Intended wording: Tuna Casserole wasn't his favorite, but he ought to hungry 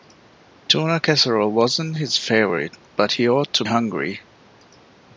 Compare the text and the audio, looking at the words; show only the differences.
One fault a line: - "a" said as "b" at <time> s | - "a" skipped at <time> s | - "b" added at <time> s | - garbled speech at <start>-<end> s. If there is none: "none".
none